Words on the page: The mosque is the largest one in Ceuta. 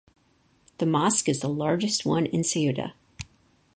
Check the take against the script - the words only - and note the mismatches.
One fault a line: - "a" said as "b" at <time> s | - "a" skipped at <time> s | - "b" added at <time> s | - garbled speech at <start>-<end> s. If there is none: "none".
none